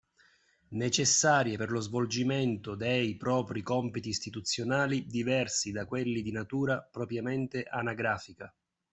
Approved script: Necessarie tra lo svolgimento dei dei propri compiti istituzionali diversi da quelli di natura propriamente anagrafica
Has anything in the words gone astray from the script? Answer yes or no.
yes